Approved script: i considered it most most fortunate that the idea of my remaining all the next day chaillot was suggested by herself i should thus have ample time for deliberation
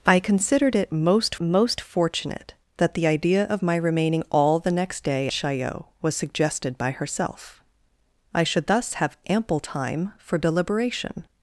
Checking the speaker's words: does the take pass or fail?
pass